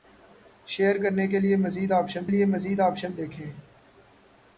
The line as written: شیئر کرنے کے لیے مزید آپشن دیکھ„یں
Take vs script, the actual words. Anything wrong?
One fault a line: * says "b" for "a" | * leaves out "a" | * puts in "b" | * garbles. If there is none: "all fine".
* puts in "لیے مزید آپشن"